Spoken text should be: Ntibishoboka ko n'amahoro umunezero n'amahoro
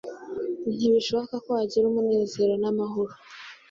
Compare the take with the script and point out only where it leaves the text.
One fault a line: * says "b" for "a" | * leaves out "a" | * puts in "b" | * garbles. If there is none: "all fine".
* says "wagira" for "n'amahoro"